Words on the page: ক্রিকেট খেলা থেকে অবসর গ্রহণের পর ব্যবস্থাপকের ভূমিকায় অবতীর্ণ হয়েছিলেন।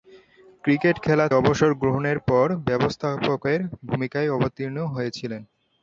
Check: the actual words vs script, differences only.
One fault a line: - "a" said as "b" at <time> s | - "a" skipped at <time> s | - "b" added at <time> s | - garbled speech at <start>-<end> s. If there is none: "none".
- "থেকে" skipped at 1.3 s